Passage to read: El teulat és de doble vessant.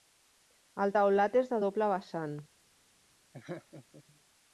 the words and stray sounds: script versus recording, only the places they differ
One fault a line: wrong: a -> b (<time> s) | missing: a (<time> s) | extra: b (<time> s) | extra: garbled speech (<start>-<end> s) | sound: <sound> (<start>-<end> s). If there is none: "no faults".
sound: laugh (3.3-4.0 s)